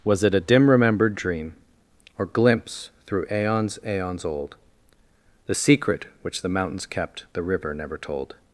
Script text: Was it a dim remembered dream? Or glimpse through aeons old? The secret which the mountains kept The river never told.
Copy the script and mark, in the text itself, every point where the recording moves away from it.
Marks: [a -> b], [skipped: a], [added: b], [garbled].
Was it a dim remembered dream? Or glimpse through aeons [added: aeons] old? The secret which the mountains kept The river never told.